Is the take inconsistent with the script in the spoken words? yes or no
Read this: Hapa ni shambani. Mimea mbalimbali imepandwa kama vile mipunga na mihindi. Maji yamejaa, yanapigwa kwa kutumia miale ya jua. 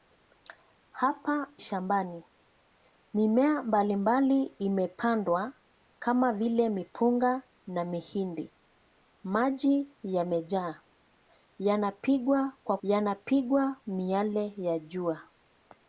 yes